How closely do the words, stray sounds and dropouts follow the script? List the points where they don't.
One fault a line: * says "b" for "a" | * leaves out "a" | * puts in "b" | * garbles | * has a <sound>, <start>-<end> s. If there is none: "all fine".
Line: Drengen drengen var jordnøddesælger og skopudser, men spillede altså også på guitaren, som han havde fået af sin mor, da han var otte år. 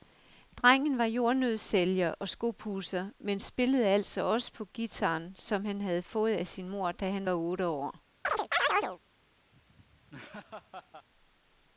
* leaves out "drengen"
* has a chirp, 8.2-9.0 s
* has a laugh, 9.5-11.1 s